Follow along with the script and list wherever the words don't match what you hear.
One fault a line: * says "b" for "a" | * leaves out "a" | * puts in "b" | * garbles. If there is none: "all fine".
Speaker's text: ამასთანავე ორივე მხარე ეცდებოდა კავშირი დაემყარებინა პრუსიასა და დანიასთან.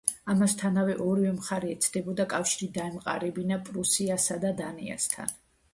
all fine